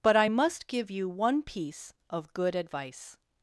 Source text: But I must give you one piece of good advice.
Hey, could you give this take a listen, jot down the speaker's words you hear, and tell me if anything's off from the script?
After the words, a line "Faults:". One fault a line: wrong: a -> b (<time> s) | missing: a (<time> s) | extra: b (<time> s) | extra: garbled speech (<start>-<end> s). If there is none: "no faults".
But I must give you one piece of good advice.
Faults:
no faults